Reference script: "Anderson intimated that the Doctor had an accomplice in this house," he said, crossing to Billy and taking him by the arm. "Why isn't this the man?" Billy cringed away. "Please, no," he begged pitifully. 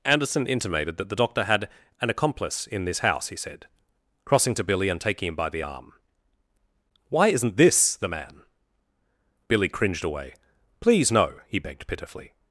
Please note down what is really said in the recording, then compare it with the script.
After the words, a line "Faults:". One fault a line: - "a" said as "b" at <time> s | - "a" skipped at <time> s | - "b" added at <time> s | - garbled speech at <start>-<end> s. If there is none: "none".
"Anderson intimated that the Doctor had an accomplice in this house," he said, crossing to Billy and taking him by the arm. "Why isn't this the man?" Billy cringed away. "Please, no," he begged pitifully.
Faults:
none